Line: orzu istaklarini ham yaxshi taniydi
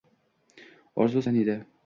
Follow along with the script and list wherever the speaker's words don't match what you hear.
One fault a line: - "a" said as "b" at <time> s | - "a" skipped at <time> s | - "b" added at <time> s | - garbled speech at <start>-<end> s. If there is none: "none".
- "istaklarini ham yaxshi" skipped at 1.2 s